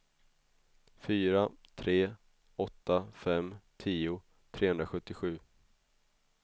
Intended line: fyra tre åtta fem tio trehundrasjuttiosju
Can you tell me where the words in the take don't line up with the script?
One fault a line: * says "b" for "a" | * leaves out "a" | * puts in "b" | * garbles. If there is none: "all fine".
all fine